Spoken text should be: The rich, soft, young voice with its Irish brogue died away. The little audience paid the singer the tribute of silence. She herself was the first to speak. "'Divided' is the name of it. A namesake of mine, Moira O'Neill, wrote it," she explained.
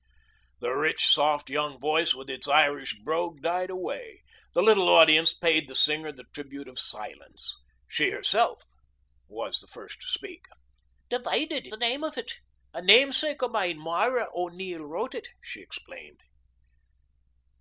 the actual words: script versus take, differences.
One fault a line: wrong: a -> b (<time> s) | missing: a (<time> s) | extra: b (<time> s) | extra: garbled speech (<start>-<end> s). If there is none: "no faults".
missing: is (11.7 s)